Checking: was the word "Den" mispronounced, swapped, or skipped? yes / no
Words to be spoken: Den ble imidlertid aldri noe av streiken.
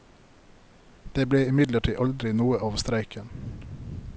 yes